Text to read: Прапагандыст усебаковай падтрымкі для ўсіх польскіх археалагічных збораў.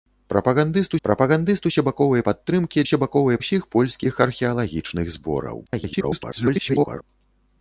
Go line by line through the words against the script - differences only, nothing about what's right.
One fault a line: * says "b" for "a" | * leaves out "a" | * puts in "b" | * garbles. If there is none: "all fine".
* puts in "прапагандыст"
* says "усебаковай" for "для"
* garbles